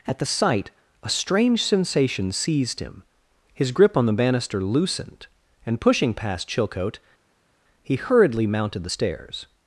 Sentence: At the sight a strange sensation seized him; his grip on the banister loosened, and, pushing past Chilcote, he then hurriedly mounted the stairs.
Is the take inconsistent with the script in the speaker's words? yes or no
yes